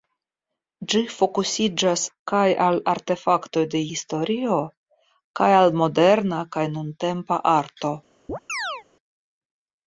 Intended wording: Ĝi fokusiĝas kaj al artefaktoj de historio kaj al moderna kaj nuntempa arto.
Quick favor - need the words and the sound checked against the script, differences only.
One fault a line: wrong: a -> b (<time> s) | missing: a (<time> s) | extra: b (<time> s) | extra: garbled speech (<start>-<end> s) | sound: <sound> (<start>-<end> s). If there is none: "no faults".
sound: chirp (8.3-8.8 s)